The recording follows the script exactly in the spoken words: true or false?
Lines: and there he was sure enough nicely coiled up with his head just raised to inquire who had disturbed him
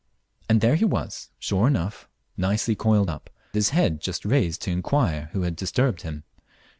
false